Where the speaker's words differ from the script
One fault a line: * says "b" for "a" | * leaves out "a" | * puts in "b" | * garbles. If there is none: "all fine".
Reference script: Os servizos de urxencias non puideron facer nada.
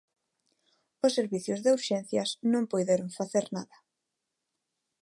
all fine